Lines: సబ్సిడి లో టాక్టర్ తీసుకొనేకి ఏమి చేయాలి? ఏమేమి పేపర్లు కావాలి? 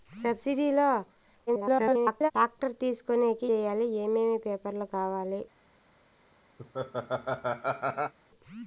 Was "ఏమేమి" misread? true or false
false